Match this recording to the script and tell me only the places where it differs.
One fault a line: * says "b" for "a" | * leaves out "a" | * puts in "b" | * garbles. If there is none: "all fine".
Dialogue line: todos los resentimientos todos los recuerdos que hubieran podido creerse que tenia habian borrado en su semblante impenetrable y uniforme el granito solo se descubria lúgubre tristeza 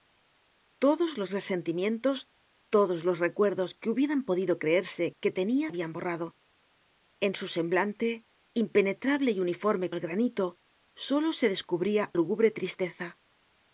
all fine